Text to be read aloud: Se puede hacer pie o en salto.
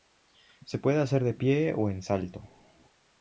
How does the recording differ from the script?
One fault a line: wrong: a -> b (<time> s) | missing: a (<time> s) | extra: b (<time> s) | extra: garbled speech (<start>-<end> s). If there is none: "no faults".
extra: de (1.2 s)